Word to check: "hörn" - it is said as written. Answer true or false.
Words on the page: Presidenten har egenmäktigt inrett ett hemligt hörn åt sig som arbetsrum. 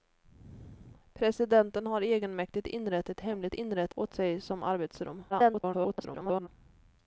false